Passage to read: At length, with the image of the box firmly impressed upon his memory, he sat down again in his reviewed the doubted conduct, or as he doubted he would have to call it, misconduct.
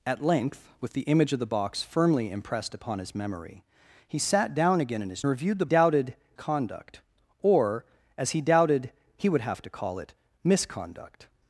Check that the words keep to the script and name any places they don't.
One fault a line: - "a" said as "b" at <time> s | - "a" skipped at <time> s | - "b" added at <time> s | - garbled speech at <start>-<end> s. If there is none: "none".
none